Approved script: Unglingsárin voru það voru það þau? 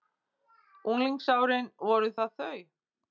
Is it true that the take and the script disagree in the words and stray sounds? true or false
true